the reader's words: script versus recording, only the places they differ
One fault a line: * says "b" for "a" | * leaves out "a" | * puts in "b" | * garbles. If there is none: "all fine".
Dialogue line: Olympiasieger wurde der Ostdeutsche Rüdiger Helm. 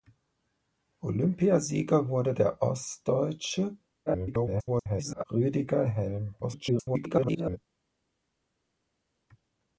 * garbles
* garbles